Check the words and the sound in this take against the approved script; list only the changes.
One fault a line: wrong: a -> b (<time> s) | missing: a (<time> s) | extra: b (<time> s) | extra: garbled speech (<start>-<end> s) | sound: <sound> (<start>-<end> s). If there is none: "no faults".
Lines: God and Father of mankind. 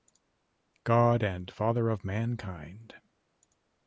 no faults